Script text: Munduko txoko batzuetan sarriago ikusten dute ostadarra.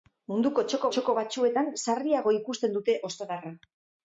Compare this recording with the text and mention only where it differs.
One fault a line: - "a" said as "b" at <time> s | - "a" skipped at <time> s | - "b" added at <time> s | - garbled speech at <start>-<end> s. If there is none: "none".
- "txoko" added at 0.9 s